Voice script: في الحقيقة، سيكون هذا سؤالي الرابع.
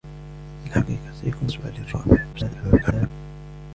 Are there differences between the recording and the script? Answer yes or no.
yes